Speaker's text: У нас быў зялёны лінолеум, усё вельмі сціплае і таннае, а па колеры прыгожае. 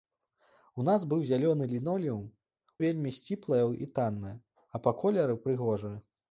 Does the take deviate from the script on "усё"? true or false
true